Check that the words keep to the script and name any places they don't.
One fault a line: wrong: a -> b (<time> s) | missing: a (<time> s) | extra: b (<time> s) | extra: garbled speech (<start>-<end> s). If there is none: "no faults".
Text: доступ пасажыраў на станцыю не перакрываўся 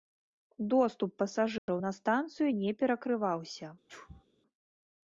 no faults